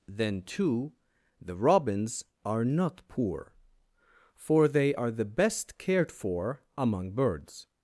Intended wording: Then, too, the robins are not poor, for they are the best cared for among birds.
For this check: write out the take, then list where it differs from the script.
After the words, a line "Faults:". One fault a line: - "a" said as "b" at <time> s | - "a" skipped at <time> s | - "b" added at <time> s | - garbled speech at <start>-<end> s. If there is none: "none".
Then, too, the robins are not poor, for they are the best cared for among birds.
Faults:
none